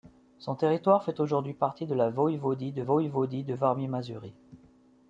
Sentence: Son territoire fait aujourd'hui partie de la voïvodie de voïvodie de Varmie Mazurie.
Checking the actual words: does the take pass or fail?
pass